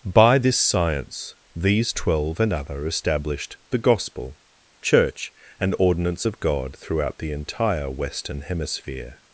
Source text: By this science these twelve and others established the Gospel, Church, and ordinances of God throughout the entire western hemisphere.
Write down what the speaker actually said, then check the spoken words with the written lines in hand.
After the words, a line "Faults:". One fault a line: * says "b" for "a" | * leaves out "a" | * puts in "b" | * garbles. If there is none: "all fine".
By this science these twelve and other established the Gospel, Church, and ordinance of God throughout the entire western hemisphere.
Faults:
* says "other" for "others"
* says "ordinance" for "ordinances"